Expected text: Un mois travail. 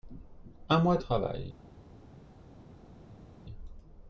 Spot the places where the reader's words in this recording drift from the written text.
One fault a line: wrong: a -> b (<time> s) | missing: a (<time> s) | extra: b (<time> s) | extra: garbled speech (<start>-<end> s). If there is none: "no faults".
no faults